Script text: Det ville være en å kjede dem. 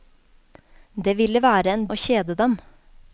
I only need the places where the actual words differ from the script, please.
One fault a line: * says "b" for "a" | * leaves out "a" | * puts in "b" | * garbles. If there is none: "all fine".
all fine